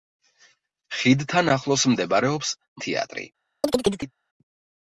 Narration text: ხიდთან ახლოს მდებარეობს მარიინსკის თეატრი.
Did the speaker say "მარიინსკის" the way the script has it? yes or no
no